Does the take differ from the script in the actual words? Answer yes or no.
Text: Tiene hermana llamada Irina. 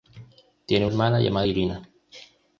no